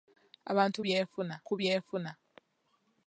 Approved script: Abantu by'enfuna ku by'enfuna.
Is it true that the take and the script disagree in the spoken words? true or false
false